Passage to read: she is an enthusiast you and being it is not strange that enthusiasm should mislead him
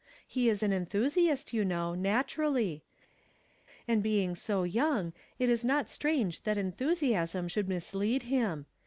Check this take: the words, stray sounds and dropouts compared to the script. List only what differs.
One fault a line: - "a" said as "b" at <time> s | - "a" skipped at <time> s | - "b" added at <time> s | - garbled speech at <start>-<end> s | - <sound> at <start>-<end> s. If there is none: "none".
- "she" said as "he" at 0.3 s
- "know naturally" added at 1.6 s
- "so young" added at 4.3 s